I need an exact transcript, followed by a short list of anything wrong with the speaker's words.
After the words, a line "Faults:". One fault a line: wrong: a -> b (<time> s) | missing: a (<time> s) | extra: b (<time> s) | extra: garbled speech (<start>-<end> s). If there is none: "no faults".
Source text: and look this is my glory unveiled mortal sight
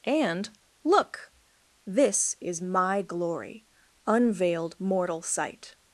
and look this is my glory unveiled mortal sight
Faults:
no faults